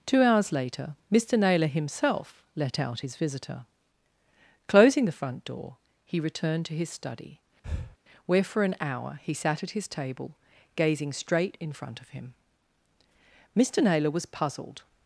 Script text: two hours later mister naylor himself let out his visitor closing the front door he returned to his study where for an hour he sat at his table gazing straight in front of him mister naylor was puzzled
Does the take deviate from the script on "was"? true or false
false